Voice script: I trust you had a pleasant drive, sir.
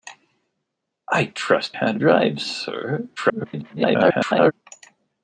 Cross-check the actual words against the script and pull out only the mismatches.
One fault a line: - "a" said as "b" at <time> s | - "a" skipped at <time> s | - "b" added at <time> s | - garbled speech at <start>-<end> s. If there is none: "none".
- "you" skipped at 1.8 s
- "pleasant" skipped at 2.0 s
- garbled speech at 3.2-4.5 s